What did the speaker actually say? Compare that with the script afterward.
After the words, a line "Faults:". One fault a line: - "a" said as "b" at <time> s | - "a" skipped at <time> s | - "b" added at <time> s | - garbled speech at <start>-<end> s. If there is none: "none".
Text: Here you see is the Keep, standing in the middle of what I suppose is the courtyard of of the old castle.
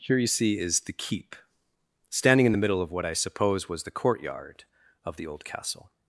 Here you see is the Keep, standing in the middle of what I suppose was the courtyard of the old castle.
Faults:
- "is" said as "was" at 3.7 s
- "of" skipped at 5.2 s